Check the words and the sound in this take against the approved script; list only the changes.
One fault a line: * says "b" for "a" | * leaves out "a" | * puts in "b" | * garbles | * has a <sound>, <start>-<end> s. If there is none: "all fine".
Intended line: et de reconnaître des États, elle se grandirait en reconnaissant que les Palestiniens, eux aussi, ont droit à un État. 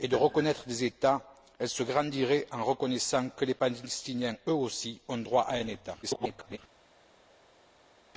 * garbles